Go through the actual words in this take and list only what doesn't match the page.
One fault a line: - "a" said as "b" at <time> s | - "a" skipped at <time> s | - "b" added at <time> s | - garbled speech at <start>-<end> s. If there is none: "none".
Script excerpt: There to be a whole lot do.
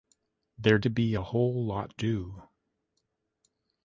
none